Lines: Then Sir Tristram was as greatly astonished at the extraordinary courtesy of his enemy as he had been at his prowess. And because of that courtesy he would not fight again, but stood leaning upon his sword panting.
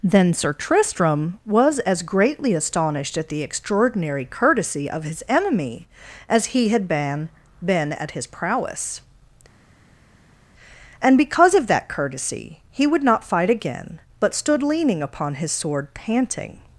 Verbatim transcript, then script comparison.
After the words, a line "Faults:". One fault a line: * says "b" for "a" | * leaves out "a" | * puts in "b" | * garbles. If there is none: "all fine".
Then Sir Tristram was as greatly astonished at the extraordinary courtesy of his enemy as he had been been at his prowess. And because of that courtesy he would not fight again, but stood leaning upon his sword panting.
Faults:
* puts in "been"